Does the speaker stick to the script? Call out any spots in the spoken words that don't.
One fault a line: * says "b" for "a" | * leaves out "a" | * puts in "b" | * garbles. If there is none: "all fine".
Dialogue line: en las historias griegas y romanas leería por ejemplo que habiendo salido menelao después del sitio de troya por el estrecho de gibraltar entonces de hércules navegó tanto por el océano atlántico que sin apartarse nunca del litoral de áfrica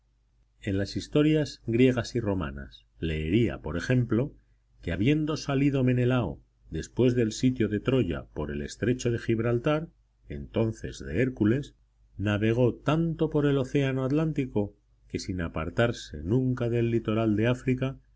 all fine